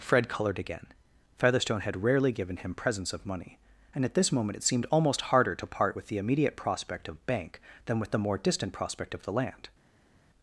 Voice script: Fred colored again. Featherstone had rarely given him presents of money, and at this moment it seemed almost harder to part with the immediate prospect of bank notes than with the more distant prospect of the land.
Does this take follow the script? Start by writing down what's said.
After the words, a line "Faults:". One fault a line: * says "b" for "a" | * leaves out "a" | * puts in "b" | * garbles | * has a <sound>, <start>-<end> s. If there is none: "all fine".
Fred colored again. Featherstone had rarely given him presents of money, and at this moment it seemed almost harder to part with the immediate prospect of bank than with the more distant prospect of the land.
Faults:
* leaves out "notes"